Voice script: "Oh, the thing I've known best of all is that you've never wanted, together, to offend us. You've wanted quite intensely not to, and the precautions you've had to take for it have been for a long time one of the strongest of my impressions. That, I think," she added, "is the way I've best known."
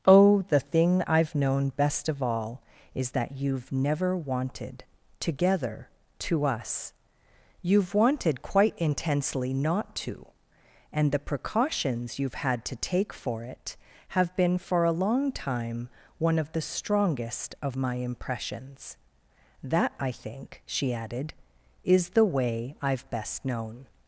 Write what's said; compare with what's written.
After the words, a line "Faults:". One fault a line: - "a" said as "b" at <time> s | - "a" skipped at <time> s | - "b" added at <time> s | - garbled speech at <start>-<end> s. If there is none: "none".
"Oh, the thing I've known best of all is that you've never wanted, together, to us. You've wanted quite intensely not to, and the precautions you've had to take for it have been for a long time one of the strongest of my impressions. That, I think," she added, "is the way I've best known."
Faults:
- "offend" skipped at 6.5 s